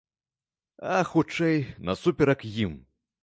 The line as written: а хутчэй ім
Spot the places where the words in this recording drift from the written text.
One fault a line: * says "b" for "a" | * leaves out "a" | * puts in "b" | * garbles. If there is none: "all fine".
* puts in "насуперак"